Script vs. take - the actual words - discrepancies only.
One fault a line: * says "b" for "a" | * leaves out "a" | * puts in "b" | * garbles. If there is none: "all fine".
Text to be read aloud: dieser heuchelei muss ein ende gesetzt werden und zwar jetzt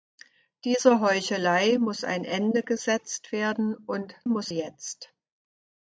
* says "muss" for "zwar"